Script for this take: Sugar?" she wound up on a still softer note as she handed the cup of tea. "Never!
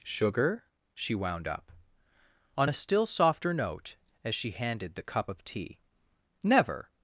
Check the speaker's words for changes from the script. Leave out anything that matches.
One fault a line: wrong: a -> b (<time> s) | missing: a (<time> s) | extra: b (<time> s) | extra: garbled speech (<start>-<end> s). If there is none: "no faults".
no faults